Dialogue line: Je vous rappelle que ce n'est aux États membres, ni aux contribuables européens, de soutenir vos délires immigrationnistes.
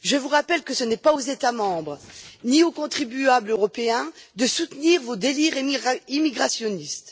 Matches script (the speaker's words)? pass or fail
fail